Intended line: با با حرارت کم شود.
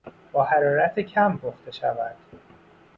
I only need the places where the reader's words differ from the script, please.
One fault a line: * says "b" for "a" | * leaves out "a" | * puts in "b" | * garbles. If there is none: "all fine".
* leaves out "با"
* puts in "پخته"